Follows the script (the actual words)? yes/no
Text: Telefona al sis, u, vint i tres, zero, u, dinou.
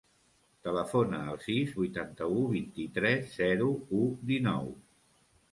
no